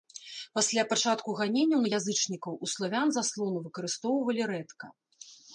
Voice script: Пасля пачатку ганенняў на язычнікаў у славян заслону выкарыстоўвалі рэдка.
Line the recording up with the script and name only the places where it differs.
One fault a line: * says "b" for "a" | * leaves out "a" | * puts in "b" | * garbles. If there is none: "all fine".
all fine